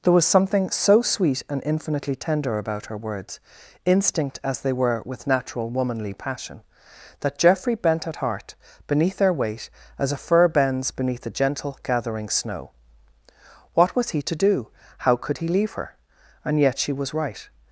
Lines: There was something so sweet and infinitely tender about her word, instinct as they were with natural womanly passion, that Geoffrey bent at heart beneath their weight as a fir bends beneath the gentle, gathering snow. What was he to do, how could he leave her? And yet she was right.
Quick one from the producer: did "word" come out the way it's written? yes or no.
no